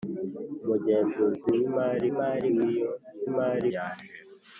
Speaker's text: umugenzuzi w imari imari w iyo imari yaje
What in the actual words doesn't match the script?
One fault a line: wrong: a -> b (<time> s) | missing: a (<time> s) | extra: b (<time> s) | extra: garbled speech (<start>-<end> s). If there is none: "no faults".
no faults